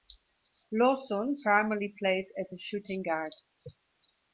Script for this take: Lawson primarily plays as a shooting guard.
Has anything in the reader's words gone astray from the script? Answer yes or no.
no